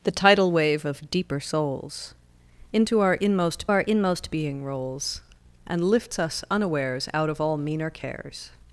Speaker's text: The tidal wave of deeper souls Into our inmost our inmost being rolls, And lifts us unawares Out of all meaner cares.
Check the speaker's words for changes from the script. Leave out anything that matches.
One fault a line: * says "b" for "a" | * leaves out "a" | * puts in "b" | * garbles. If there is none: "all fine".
all fine